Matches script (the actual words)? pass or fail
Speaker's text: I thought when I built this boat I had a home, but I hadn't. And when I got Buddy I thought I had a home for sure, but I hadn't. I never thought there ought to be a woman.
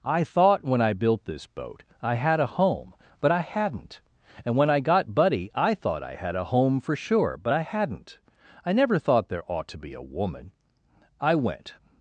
fail